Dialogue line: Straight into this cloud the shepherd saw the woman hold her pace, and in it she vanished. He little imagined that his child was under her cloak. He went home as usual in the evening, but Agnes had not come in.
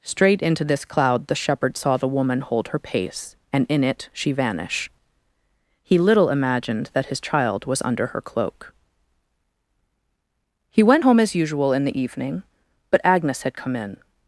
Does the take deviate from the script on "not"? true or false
true